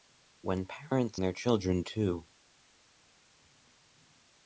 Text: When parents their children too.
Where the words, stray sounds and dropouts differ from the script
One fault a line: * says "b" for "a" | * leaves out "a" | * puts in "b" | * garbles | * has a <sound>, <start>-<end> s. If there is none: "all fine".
all fine